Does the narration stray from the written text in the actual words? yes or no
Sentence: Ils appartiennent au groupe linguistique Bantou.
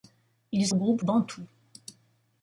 yes